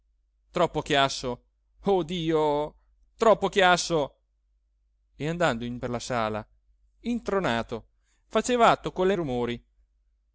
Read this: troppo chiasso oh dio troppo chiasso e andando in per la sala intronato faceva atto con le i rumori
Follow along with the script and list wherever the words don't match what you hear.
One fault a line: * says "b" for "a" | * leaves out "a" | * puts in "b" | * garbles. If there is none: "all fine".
all fine